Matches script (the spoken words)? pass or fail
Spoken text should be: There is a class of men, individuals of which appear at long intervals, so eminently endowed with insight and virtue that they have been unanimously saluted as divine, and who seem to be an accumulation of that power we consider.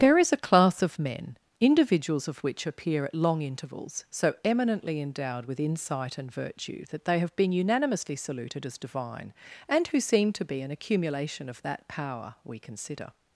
pass